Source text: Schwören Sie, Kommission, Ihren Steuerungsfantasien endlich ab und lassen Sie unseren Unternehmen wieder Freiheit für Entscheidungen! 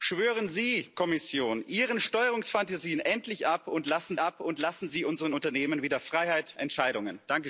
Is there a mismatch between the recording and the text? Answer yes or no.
yes